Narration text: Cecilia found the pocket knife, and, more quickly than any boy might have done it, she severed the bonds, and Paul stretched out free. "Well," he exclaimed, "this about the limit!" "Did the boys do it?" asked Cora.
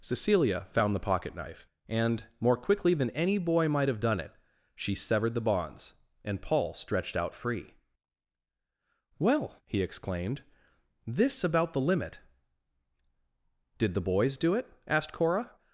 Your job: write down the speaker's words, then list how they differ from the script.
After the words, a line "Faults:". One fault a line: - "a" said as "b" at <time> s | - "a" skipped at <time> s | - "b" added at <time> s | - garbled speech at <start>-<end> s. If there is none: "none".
Cecilia found the pocket knife, and, more quickly than any boy might have done it, she severed the bonds, and Paul stretched out free. "Well," he exclaimed, "this about the limit!" "Did the boys do it?" asked Cora.
Faults:
none